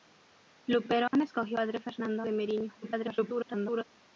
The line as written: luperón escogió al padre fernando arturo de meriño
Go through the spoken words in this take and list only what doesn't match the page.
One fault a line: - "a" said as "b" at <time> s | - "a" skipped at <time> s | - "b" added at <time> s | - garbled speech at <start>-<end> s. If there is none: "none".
- "al" skipped at 1.6 s
- "arturo" skipped at 2.2 s
- garbled speech at 2.8-3.8 s